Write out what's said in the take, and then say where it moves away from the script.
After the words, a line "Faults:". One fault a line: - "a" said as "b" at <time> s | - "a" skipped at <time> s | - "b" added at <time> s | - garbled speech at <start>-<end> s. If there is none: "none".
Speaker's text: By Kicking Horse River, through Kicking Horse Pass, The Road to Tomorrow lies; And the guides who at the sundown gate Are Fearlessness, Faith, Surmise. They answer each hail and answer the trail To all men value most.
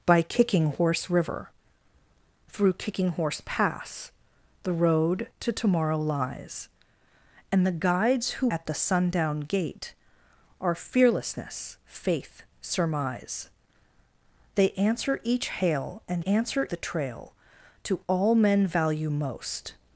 By Kicking Horse River, through Kicking Horse Pass, The Road to Tomorrow lies; And the guides who at the sundown gate Are Fearlessness, Faith, Surmise. They answer each hail and answer the trail To all men value most.
Faults:
none